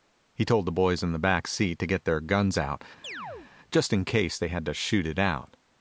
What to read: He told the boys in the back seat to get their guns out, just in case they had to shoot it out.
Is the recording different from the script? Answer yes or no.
no